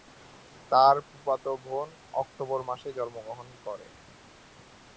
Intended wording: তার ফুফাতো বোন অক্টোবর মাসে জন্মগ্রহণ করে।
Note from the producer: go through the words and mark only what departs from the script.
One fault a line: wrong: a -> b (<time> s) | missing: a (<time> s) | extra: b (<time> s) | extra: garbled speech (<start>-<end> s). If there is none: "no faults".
no faults